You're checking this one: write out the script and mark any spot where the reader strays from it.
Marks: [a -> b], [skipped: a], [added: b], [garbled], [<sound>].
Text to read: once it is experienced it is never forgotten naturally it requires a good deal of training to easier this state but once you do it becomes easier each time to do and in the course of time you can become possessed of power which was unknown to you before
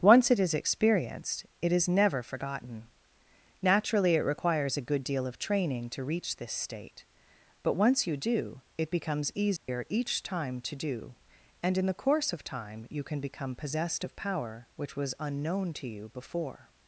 once it is experienced it is never forgotten naturally it requires a good deal of training to [easier -> reach] this state but once you do it becomes easier [dropout] each time to do and in the course of time you can become possessed of power which was unknown to you before